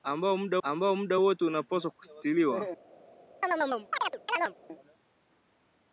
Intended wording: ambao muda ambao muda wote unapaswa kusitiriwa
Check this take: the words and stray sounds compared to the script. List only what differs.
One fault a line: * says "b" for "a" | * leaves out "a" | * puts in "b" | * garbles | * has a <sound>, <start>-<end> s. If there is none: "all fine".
* has a chirp, 3.4-4.5 s